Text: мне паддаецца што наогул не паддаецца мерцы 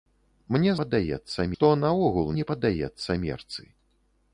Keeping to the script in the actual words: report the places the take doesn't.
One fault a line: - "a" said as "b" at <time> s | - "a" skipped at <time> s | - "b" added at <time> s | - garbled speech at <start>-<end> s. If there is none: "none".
none